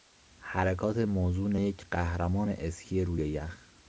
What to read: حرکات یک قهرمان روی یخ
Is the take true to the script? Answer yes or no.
no